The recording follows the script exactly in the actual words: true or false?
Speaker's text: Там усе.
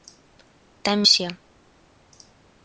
true